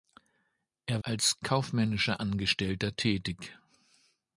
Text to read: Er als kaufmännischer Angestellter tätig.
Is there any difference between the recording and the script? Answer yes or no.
no